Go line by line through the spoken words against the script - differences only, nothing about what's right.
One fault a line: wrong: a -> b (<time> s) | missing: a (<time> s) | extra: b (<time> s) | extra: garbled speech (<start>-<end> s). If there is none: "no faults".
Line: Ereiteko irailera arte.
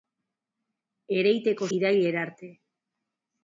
no faults